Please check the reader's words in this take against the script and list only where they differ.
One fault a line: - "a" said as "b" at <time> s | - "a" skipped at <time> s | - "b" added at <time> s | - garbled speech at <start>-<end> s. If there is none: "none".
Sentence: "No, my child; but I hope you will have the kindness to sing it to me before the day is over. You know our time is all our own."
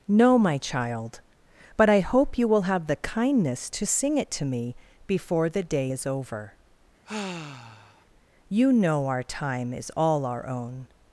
none